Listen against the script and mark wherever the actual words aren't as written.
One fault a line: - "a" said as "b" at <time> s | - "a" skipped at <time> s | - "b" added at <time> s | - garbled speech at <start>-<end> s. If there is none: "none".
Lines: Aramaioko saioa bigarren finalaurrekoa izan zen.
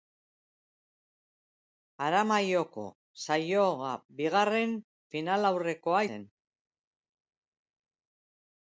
- "izan" skipped at 6.0 s